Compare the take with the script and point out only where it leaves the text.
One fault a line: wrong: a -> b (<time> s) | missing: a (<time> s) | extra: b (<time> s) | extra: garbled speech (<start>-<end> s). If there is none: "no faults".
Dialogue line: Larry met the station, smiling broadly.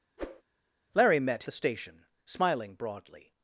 no faults